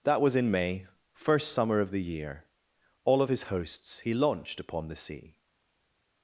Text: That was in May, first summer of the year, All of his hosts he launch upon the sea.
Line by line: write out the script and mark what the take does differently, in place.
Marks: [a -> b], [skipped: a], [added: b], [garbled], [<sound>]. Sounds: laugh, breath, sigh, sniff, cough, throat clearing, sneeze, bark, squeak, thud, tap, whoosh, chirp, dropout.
That was in May, first summer of the year, All of his hosts he [launch -> launched] upon the sea.